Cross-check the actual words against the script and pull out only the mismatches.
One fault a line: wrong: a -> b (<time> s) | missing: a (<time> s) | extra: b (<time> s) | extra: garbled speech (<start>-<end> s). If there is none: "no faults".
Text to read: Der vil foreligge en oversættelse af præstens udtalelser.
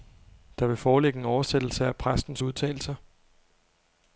no faults